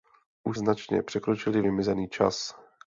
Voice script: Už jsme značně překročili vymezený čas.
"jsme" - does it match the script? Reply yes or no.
no